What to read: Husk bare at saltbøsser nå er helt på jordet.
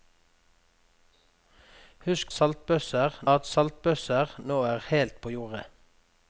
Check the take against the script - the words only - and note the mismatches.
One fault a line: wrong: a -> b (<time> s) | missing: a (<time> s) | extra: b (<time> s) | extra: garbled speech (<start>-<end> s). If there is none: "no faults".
wrong: bare -> saltbøsser (2.3 s)